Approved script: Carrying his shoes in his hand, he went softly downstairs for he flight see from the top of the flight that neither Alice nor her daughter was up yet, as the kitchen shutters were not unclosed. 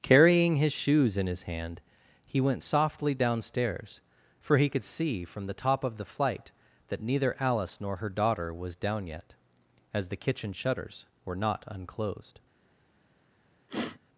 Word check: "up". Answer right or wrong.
wrong